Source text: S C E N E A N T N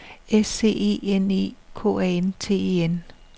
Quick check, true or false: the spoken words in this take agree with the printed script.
false